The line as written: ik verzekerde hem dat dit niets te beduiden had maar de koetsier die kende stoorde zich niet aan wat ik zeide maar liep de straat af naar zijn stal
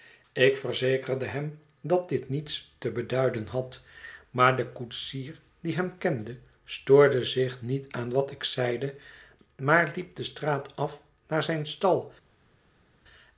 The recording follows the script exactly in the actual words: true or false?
false